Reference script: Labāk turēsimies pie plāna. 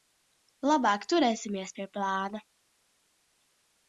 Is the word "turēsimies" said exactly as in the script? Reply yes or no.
yes